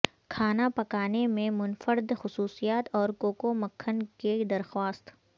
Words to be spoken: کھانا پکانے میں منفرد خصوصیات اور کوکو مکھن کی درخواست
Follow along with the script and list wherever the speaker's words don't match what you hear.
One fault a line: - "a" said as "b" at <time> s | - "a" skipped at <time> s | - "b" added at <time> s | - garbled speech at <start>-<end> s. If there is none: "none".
none